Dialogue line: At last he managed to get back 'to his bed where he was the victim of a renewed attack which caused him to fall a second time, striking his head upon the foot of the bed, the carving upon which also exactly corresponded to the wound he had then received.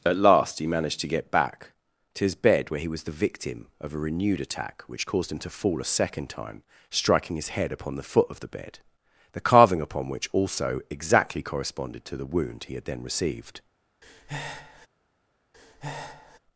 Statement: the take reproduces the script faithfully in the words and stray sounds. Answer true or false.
false